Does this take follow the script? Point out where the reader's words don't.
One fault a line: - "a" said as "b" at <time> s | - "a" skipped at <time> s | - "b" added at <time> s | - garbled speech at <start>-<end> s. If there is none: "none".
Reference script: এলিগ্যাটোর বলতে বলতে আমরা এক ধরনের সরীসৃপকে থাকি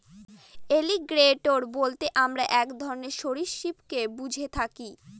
- "বলতে" skipped at 2.0 s
- "বুঝে" added at 4.2 s